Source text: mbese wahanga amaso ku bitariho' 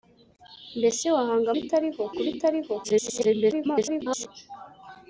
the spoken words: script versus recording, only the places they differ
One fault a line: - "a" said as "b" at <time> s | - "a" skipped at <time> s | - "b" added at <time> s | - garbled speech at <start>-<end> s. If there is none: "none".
- "amaso" said as "bitariho" at 1.5 s
- garbled speech at 2.8-4.3 s